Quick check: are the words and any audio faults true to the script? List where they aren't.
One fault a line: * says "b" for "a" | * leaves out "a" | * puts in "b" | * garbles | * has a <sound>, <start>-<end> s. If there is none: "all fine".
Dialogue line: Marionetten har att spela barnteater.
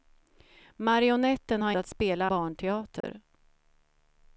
* has a dropout, 3.0-3.0 s